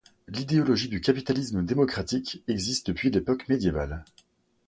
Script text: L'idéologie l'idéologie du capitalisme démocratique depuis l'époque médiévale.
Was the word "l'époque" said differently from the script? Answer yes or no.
no